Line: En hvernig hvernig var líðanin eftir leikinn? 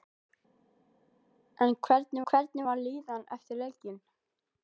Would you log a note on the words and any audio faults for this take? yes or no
no